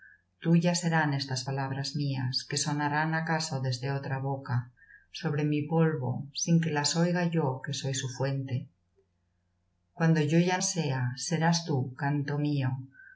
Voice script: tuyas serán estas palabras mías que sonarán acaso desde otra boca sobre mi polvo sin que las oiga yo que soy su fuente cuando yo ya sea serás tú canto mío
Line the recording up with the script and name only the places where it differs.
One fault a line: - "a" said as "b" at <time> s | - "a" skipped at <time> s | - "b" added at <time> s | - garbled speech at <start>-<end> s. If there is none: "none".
none